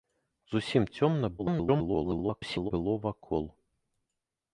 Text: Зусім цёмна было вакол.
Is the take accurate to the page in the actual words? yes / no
no